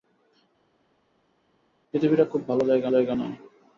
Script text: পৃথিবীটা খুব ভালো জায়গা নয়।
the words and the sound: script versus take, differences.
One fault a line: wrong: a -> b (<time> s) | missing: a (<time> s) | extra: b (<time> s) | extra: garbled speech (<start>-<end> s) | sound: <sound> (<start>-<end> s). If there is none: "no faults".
extra: জায়গা (2.9 s)